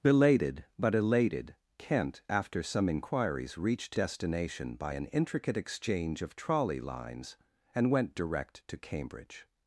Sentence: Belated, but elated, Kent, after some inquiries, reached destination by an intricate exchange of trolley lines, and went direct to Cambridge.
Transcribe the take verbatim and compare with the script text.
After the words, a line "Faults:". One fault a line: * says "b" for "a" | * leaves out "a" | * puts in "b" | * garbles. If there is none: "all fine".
Belated, but elated, Kent, after some inquiries, reached destination by an intricate exchange of trolley lines, and went direct to Cambridge.
Faults:
all fine